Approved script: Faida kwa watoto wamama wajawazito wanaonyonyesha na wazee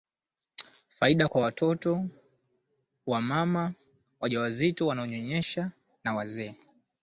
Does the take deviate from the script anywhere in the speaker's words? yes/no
no